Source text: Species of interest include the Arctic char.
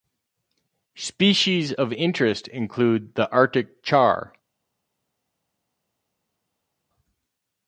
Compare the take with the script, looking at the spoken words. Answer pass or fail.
pass